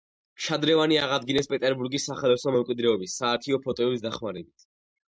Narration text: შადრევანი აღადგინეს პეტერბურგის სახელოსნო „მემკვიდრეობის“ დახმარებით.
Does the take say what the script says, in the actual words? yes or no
no